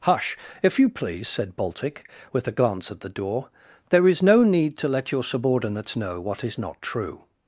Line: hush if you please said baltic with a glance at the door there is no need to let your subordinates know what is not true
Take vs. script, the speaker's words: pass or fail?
pass